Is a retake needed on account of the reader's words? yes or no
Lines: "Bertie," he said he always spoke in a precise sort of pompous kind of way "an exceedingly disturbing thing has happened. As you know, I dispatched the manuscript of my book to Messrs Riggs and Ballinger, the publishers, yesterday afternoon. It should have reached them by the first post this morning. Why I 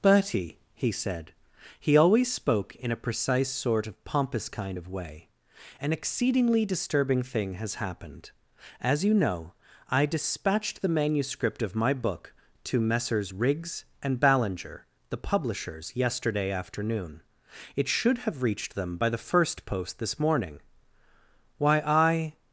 no